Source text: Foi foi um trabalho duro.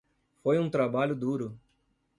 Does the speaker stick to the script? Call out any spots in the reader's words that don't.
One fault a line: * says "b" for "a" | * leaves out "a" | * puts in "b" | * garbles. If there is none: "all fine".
* leaves out "foi"